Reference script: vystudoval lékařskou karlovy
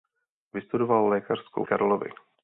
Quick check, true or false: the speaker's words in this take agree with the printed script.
true